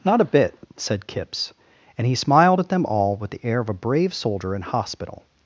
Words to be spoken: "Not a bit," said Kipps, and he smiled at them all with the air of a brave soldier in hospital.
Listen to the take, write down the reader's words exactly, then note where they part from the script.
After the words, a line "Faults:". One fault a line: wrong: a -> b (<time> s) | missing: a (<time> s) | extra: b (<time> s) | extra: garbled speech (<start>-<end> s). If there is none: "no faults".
"Not a bit," said Kipps, and he smiled at them all with the air of a brave soldier in hospital.
Faults:
no faults